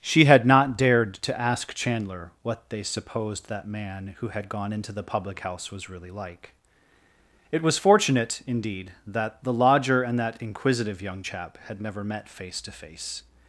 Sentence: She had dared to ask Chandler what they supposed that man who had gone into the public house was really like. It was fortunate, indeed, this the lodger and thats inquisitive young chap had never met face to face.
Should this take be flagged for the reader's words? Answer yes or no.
yes